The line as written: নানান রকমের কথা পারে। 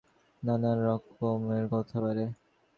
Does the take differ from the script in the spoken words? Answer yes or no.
no